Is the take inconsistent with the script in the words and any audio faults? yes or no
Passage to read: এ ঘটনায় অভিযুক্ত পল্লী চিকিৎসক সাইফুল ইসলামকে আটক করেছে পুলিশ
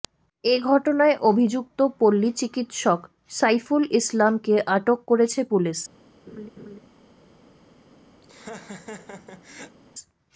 yes